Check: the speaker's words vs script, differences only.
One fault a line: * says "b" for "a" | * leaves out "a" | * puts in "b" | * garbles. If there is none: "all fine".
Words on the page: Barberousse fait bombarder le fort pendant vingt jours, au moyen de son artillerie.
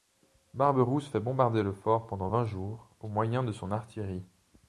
all fine